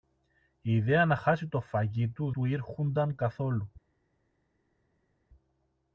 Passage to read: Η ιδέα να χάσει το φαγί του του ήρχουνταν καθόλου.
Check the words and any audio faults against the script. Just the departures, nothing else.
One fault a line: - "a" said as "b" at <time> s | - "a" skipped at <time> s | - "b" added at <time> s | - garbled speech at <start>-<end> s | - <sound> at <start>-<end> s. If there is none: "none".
none